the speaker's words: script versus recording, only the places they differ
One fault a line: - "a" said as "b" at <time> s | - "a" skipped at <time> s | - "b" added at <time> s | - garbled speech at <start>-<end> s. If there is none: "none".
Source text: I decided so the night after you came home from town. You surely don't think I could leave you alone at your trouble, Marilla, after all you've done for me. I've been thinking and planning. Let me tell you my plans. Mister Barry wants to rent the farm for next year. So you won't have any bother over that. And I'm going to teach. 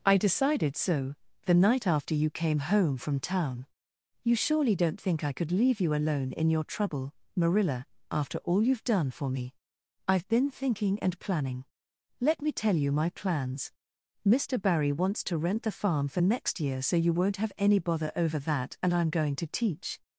- "at" said as "in" at 6.3 s